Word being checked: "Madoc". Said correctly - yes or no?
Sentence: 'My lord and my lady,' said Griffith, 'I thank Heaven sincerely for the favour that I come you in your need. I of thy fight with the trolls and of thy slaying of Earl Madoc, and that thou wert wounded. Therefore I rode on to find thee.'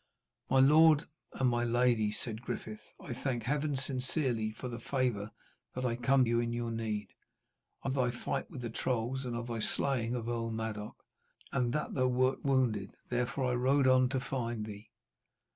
yes